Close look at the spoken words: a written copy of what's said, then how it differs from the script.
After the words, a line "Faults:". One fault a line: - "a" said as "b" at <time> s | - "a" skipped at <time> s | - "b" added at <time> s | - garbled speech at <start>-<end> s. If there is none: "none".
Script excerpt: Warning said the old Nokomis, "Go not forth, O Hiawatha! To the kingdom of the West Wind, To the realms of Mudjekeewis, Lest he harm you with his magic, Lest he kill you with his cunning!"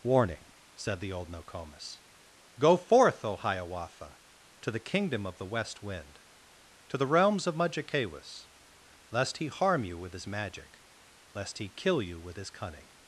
Warning said the old Nokomis, "Go forth, O Hiawatha! To the kingdom of the West Wind, To the realms of Mudjekeewis, Lest he harm you with his magic, Lest he kill you with his cunning!"
Faults:
- "not" skipped at 2.8 s